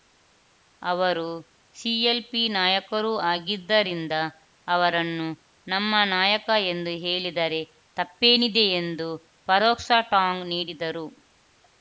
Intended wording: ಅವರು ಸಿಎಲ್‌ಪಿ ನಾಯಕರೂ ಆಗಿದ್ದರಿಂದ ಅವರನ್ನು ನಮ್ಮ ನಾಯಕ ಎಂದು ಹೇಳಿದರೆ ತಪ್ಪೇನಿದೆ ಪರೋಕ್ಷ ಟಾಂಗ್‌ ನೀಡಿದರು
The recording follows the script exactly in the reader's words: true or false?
false